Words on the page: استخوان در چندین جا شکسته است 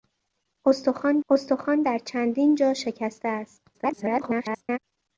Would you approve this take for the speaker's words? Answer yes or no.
no